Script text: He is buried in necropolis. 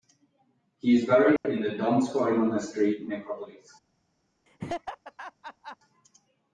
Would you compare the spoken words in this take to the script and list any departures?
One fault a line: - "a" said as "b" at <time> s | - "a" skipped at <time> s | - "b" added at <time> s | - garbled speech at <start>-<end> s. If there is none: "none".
- "the Donskoy monastery" added at 1.6 s